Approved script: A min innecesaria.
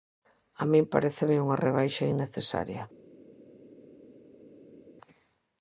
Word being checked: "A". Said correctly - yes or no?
yes